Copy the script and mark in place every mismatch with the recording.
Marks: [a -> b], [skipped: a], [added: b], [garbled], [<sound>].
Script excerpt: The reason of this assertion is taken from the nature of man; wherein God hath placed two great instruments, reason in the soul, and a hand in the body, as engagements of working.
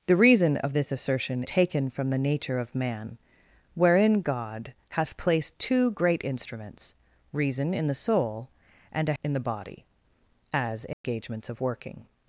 The reason of this assertion [skipped: is] taken from the nature of man; wherein God hath placed two great instruments, reason in the soul, and a [skipped: hand] in the body, as engagements [dropout] of working.